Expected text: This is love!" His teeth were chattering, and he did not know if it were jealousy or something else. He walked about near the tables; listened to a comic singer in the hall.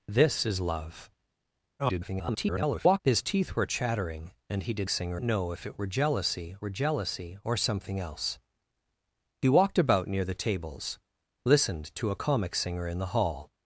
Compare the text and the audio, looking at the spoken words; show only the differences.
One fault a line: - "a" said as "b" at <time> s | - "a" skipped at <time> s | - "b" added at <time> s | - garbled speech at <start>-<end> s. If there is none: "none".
- garbled speech at 1.8-3.0 s
- "not" said as "singer" at 4.9 s
- "were jealousy" added at 6.6 s